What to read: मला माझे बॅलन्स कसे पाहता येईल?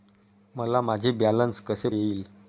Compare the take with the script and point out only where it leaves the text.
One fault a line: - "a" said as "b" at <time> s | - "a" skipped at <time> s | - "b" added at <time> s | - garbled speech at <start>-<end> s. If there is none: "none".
- "पाहता" skipped at 1.9 s